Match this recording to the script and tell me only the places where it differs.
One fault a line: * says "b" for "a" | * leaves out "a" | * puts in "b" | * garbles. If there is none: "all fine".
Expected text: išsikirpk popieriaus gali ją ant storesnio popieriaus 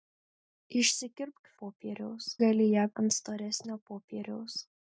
all fine